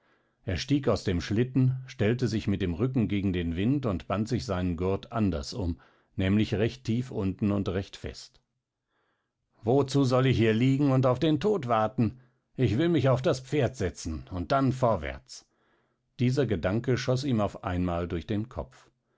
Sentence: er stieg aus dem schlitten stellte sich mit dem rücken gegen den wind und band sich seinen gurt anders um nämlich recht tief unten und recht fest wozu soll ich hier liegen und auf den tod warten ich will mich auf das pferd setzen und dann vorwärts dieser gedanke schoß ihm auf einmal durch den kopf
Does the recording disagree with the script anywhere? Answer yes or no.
no